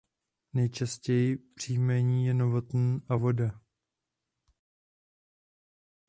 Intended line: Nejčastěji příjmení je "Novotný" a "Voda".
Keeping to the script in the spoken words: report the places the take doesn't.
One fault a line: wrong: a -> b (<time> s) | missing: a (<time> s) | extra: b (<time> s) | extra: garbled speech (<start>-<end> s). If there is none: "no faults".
no faults